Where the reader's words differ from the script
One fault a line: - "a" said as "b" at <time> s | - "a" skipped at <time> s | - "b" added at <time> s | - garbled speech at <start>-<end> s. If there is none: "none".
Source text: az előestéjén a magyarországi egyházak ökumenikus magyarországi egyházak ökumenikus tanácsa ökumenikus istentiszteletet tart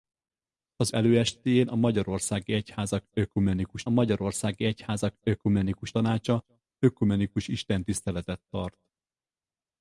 none